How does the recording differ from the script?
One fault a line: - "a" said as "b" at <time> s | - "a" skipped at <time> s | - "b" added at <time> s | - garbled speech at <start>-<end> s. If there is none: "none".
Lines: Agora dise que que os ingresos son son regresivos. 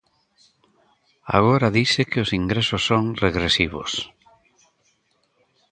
- "que" skipped at 2.2 s
- "son" skipped at 3.0 s